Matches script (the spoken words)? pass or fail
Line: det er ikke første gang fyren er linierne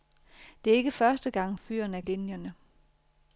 pass